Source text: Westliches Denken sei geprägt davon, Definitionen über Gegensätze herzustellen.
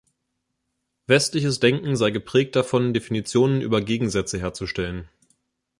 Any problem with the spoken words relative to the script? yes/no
no